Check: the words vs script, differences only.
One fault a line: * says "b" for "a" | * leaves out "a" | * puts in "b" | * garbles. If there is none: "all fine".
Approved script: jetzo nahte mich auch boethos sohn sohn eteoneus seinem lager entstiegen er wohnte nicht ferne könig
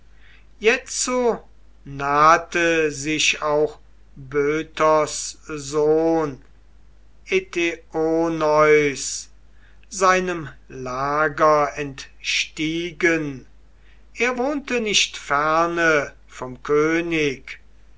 * says "sich" for "mich"
* leaves out "sohn"
* puts in "vom"